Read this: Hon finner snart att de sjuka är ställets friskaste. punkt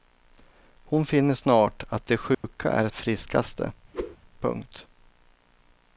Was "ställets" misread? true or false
true